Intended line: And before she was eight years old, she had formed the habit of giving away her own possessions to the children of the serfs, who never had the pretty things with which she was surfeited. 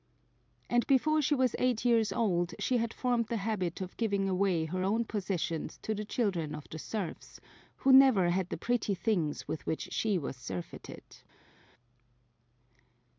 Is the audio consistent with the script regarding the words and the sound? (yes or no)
yes